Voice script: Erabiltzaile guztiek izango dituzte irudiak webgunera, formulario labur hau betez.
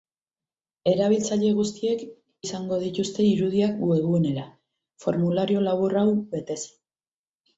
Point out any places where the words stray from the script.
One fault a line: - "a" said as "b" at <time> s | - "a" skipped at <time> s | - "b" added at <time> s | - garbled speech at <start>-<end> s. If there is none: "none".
none